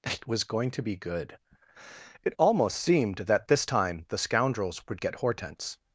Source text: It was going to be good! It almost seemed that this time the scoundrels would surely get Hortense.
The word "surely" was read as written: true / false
false